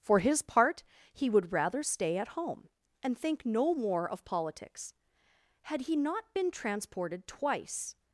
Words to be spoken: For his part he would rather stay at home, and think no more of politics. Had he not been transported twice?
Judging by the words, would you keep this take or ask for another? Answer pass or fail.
pass